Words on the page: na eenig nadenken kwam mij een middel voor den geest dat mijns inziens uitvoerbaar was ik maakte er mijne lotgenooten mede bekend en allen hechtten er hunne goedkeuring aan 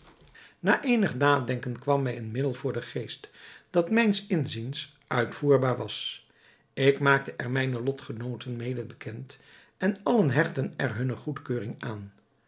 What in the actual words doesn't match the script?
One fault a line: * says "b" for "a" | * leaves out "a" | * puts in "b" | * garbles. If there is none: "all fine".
all fine